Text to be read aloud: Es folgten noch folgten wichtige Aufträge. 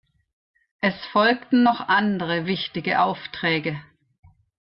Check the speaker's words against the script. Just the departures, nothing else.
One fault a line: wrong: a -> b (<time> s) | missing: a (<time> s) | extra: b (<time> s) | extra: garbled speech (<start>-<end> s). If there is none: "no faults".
wrong: folgten -> andere (1.8 s)